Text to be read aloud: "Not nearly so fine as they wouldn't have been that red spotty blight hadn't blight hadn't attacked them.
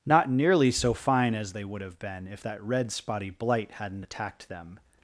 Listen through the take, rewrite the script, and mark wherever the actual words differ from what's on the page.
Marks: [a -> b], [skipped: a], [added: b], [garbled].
"Not nearly so fine as they [wouldn't -> would] have been [added: if] that red spotty blight hadn't [skipped: blight hadn't] attacked them.